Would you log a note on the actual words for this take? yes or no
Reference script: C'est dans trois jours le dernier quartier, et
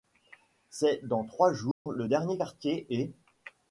no